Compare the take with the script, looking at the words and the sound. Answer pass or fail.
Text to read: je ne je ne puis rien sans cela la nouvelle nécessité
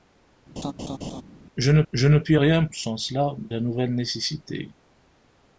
fail